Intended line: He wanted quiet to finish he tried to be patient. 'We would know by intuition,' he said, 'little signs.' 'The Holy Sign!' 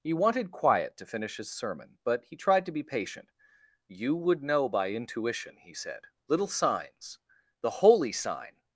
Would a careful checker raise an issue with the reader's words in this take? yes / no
yes